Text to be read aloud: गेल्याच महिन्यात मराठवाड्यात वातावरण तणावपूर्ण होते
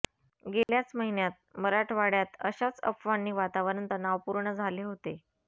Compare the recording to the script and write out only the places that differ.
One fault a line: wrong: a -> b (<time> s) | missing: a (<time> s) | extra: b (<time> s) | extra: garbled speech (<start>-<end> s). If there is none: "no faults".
extra: अशाच अफवांनी (2.4 s)
extra: झाले (4.5 s)